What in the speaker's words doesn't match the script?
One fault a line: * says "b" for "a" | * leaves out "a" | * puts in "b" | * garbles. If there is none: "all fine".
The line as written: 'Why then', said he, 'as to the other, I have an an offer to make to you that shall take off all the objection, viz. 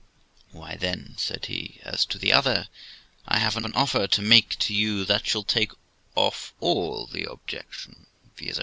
all fine